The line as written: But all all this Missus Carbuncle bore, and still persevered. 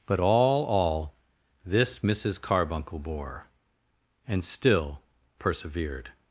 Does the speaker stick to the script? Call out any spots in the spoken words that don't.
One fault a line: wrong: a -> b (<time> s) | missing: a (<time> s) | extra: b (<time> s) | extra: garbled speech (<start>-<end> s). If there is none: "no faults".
no faults